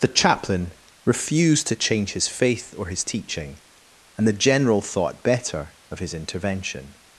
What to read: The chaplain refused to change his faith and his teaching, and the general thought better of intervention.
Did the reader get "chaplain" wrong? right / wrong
right